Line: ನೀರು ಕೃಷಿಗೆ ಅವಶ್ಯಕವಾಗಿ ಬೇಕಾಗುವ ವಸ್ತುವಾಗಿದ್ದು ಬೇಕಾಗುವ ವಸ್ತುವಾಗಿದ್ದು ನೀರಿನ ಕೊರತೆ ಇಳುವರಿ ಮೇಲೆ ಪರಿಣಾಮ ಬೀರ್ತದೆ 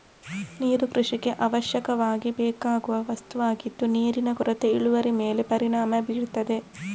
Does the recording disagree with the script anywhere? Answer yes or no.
yes